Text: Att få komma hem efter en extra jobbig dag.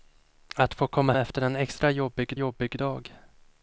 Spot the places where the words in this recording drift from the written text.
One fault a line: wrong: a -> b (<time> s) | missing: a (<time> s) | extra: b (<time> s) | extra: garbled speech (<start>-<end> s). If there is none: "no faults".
missing: hem (1.1 s)
extra: jobbig (2.3 s)